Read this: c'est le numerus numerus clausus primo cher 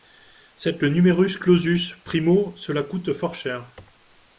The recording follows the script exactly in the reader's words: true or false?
false